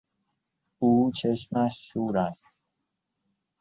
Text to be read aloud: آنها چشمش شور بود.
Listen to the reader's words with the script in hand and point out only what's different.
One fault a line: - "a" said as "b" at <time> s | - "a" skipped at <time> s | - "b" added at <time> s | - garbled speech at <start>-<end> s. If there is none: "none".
- "آنها" said as "او" at 0.8 s
- "بود" said as "است" at 2.2 s